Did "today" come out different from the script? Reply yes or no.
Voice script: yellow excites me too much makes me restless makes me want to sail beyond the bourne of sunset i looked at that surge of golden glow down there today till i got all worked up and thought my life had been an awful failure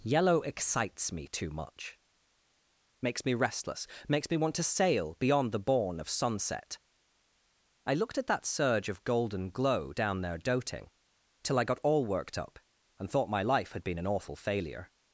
yes